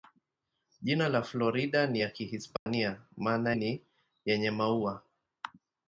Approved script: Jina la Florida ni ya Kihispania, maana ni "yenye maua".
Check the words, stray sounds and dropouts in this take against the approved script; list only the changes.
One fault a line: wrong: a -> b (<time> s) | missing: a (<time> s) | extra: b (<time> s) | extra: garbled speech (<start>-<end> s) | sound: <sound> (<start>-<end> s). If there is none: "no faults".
sound: dropout (2.6-2.7 s)